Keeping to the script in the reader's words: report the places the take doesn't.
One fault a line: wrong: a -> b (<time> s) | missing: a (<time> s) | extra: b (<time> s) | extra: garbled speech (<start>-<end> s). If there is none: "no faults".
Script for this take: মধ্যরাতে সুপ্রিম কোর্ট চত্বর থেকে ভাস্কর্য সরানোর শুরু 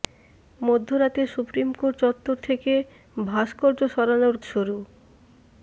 no faults